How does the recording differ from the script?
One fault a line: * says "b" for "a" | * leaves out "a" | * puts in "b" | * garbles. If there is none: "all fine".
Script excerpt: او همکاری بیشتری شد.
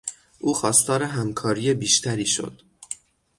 * puts in "خواستار"